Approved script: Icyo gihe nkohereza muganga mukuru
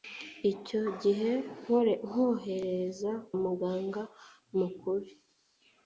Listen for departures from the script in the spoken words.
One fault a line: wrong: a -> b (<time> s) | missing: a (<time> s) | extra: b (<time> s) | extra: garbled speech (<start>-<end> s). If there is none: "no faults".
no faults